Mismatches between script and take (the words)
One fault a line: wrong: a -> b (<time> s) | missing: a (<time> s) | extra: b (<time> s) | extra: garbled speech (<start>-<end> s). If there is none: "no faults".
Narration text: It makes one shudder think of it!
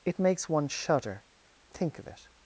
no faults